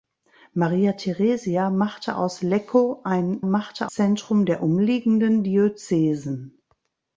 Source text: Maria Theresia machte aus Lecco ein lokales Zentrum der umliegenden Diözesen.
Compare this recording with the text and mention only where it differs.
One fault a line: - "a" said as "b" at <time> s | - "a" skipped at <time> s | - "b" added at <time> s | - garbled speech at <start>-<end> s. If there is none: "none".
- "lokales" said as "machte" at 3.4 s